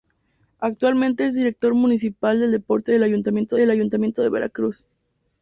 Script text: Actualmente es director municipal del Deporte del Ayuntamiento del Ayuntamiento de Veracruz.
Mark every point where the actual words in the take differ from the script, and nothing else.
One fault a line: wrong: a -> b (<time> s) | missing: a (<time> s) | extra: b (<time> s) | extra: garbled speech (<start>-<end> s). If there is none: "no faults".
no faults